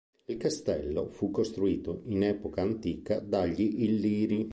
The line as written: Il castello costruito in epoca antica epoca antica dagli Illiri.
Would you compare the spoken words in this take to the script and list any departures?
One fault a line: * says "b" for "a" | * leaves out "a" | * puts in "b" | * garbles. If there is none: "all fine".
* puts in "fu"
* leaves out "epoca antica"